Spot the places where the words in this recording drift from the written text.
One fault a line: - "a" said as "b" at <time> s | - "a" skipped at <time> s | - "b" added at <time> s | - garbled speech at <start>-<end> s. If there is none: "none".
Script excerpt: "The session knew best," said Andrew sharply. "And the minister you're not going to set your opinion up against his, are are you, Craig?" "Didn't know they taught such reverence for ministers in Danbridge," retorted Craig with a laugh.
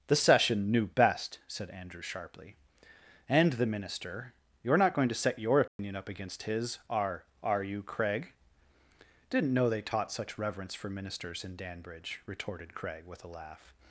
none